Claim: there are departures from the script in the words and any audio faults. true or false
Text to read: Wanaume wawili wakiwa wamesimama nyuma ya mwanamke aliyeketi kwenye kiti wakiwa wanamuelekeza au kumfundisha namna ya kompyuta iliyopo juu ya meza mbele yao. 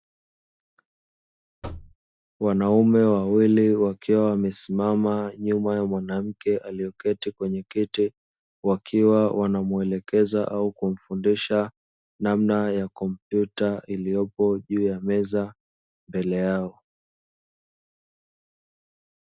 true